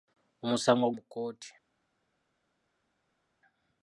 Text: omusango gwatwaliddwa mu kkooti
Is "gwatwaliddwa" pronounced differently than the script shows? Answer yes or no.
yes